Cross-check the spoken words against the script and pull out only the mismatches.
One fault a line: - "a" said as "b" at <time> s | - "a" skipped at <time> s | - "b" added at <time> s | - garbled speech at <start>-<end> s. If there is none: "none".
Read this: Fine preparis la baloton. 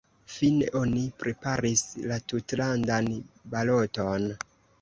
- "oni" added at 0.8 s
- "tutlandan" added at 2.3 s